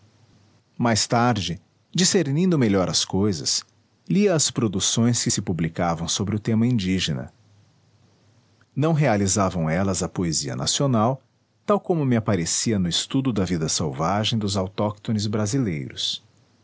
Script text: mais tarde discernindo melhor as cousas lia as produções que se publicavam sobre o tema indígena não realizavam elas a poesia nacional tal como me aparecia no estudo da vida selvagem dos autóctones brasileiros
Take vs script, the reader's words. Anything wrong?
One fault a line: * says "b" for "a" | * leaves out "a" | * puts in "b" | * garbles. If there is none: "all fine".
all fine